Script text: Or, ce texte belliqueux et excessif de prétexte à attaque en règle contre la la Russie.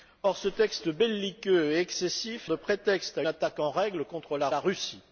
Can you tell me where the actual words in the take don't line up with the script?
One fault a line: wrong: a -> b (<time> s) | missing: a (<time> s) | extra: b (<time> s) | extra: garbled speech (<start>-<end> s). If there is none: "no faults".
no faults